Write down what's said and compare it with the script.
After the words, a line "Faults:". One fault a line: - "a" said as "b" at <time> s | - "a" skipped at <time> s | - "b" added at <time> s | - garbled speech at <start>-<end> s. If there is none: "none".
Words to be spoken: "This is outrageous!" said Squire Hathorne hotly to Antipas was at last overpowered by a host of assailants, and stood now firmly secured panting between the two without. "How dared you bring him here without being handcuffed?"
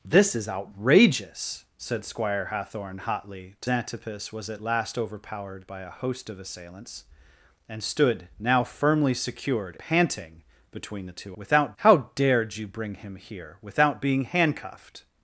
"This is outrageous!" said Squire Hathorne hotly to Antipas was at last overpowered by a host of assailants, and stood now firmly secured panting between the two without. "How dared you bring him here without being handcuffed?"
Faults:
none